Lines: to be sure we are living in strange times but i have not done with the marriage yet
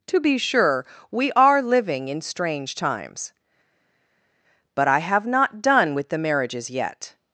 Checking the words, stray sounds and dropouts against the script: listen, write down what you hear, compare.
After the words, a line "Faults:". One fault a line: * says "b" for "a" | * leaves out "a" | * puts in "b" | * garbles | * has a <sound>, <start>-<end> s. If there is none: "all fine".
to be sure we are living in strange times but i have not done with the marriages yet
Faults:
* says "marriages" for "marriage"